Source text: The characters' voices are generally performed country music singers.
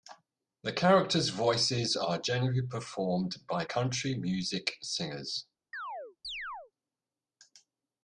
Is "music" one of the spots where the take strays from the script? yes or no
no